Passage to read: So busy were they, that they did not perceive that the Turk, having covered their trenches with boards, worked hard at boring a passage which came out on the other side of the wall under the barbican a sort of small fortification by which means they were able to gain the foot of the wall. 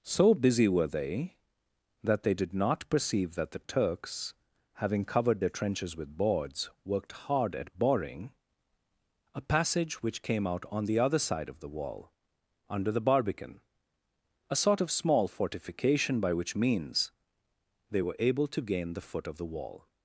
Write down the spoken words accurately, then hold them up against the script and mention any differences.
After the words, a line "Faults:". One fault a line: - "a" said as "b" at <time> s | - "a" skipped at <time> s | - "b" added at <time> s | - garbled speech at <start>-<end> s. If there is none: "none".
So busy were they, that they did not perceive that the Turks, having covered their trenches with boards, worked hard at boring a passage which came out on the other side of the wall under the barbican a sort of small fortification by which means they were able to gain the foot of the wall.
Faults:
- "Turk" said as "Turks" at 3.6 s